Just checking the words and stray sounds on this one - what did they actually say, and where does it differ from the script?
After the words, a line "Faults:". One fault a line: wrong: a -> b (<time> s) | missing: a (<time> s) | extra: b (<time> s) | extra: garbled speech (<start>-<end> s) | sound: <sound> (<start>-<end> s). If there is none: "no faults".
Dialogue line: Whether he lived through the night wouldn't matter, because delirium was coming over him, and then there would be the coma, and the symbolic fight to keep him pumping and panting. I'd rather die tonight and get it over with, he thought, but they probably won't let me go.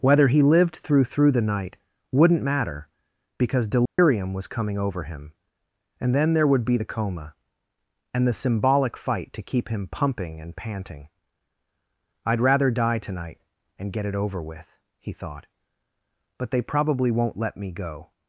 Whether he lived through through the night wouldn't matter, because delirium was coming over him, and then there would be the coma, and the symbolic fight to keep him pumping and panting. I'd rather die tonight and get it over with, he thought, but they probably won't let me go.
Faults:
extra: through (1.0 s)
sound: dropout (3.9-4.0 s)